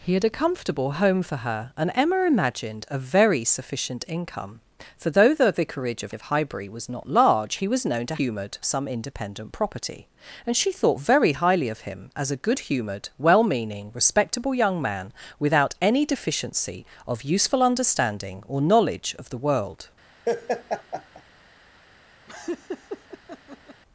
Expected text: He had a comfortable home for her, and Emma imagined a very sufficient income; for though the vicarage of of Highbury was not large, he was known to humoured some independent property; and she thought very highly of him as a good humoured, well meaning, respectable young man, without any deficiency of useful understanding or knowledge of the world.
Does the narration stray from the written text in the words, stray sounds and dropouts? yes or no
yes